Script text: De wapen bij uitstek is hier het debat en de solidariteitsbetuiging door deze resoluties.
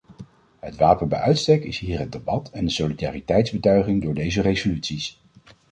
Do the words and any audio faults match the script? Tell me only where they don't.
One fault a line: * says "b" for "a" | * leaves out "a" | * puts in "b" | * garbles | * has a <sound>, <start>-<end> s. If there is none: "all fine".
* says "Het" for "De"